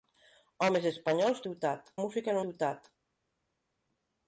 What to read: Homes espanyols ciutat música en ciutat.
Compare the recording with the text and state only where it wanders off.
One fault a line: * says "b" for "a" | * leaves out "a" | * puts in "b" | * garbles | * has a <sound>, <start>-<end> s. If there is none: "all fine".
all fine